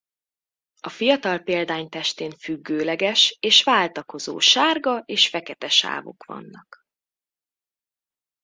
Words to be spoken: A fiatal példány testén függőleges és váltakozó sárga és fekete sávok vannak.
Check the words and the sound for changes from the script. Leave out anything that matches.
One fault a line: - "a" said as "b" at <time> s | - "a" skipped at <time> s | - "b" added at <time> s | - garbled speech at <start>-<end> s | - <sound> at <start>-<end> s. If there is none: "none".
none